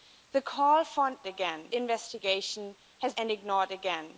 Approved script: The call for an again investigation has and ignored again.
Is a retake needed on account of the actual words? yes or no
no